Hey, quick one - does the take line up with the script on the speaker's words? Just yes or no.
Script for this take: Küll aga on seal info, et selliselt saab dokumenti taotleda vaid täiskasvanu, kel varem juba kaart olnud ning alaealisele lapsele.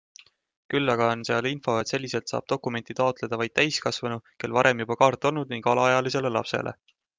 yes